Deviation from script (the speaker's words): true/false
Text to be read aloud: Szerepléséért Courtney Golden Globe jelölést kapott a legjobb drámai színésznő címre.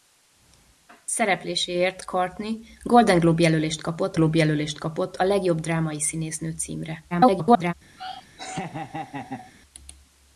true